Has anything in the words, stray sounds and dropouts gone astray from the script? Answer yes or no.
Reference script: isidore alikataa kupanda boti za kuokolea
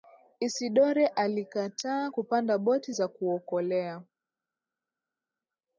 no